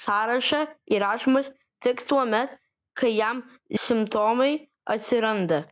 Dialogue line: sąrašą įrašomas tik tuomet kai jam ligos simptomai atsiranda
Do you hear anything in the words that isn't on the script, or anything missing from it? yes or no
yes